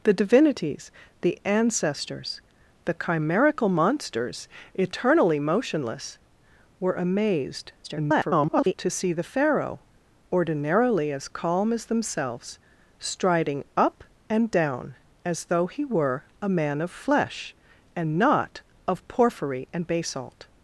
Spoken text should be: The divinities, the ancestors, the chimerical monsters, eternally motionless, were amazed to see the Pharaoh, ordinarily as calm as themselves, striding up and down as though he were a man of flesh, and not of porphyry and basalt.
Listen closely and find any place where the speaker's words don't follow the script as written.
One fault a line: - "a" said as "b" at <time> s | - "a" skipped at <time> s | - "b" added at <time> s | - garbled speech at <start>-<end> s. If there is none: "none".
- garbled speech at 7.8-8.7 s